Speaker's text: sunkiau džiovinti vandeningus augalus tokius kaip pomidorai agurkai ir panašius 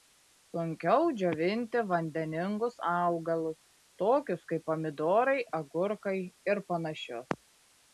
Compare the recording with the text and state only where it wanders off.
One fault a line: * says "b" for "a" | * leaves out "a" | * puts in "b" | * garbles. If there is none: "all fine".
all fine